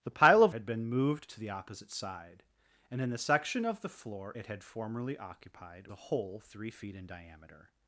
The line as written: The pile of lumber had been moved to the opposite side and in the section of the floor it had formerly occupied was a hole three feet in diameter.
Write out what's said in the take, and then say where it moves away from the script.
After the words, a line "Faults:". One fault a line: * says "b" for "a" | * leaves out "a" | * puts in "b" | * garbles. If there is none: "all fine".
The pile of had been moved to the opposite side and in the section of the floor it had formerly occupied a hole three feet in diameter.
Faults:
* leaves out "lumber"
* leaves out "was"